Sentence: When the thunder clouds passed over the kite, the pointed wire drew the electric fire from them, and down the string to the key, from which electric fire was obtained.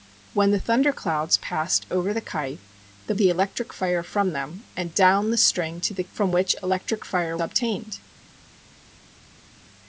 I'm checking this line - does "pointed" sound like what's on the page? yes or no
no